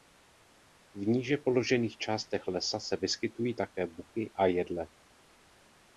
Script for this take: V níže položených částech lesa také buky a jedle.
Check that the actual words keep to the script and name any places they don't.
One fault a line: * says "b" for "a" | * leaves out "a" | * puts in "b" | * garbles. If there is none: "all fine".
* puts in "se vyskytují"